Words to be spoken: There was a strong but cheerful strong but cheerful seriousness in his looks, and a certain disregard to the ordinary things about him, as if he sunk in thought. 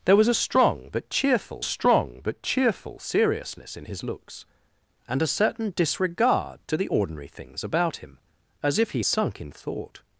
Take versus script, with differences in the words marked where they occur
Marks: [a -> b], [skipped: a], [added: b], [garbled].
There was a strong but cheerful strong but cheerful seriousness in his looks, and a certain disregard to the ordinary things about him, as if he sunk in thought.